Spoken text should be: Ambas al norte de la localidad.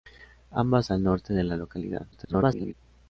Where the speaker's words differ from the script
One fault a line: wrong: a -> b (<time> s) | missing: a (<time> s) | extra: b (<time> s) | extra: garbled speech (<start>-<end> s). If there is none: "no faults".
extra: garbled speech (2.1-2.7 s)